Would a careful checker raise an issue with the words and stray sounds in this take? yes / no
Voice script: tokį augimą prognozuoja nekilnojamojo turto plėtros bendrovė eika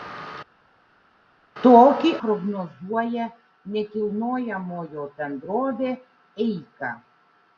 yes